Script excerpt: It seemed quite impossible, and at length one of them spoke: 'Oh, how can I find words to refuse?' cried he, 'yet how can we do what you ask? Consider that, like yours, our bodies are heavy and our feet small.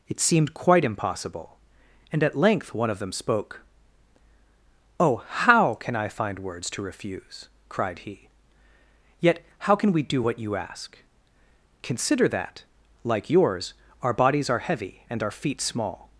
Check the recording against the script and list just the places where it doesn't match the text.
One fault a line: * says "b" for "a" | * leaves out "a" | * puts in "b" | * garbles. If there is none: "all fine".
all fine